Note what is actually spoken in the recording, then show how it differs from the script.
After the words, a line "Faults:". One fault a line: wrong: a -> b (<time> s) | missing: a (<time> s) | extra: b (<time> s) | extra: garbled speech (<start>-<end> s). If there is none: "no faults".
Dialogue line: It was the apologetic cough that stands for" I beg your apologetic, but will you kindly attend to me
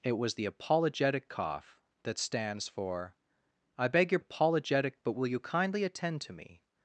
It was the apologetic cough that stands for" I beg your apologetic, but will you kindly attend to me
Faults:
no faults